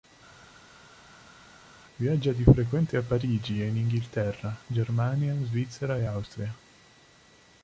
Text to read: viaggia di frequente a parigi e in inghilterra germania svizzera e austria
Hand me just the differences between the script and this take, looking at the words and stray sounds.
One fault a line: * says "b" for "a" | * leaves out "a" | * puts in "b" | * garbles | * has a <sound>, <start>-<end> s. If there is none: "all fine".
all fine